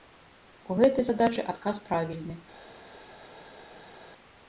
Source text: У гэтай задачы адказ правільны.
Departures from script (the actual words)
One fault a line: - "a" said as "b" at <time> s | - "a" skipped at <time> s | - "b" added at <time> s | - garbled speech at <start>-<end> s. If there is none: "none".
none